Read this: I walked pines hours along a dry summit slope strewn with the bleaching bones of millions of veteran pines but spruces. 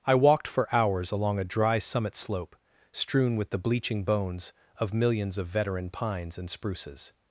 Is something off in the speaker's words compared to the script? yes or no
yes